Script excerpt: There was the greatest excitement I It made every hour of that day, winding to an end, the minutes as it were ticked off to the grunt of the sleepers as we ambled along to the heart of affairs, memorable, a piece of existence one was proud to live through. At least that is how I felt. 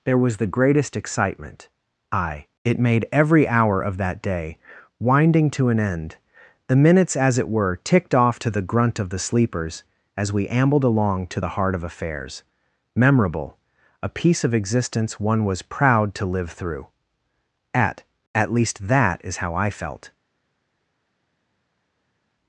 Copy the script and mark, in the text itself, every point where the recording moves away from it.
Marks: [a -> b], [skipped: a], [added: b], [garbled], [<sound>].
There was the greatest excitement I It made every hour of that day, winding to an end, the minutes as it were ticked off to the grunt of the sleepers as we ambled along to the heart of affairs, memorable, a piece of existence one was proud to live through. At [added: At] least that is how I felt.